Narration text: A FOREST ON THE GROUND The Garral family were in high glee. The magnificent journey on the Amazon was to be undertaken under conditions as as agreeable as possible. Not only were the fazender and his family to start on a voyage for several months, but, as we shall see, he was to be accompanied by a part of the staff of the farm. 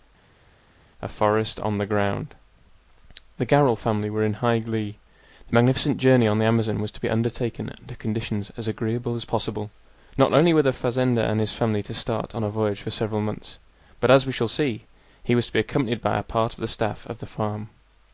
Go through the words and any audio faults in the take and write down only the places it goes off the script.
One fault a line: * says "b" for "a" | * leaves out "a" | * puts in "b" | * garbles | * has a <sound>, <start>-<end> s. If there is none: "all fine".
* leaves out "as"